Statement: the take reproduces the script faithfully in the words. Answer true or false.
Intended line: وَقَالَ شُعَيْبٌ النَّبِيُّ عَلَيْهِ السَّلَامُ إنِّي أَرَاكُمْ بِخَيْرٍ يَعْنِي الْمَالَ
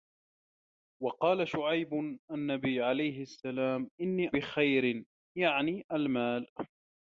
false